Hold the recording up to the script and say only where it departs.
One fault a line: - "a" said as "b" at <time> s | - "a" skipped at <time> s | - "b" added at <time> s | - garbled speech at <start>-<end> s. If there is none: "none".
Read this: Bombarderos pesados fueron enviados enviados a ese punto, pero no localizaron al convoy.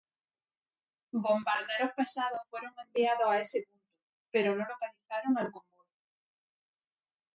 - "enviados" skipped at 3.3 s